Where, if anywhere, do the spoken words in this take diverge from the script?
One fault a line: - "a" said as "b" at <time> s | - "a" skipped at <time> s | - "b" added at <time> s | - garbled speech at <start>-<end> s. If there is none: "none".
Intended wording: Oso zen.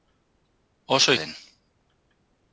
none